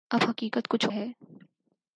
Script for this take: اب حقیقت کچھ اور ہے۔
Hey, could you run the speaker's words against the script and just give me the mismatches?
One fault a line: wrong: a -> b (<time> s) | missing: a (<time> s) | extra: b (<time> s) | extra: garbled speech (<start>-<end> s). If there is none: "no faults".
missing: اور (0.8 s)